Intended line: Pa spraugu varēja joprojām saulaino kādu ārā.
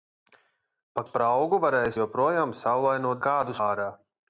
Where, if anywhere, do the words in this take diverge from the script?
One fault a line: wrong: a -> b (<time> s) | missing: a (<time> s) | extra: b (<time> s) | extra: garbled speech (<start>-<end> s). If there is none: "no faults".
no faults